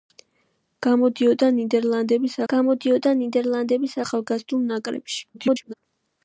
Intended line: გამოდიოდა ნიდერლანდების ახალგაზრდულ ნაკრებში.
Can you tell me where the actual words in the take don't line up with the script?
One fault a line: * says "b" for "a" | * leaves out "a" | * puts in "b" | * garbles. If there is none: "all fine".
* puts in "გამოდიოდა ნიდერლანდების"
* garbles